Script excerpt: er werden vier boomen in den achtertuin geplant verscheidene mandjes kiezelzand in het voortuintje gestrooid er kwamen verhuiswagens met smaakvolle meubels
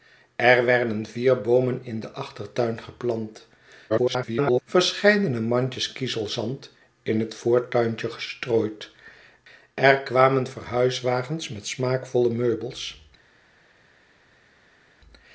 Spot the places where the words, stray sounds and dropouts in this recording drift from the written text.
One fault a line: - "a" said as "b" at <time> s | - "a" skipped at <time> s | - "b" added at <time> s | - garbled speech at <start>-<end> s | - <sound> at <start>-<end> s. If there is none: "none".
- garbled speech at 3.9-4.6 s